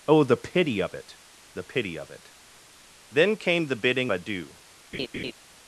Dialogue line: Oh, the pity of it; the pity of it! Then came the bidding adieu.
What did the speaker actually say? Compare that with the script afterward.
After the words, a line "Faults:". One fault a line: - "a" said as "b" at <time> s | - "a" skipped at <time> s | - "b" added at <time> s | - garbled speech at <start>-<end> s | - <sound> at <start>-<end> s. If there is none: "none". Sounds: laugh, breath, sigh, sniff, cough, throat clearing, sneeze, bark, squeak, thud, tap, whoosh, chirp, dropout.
Oh, the pity of it; the pity of it! Then came the bidding adieu.
Faults:
- laugh at 4.9-5.3 s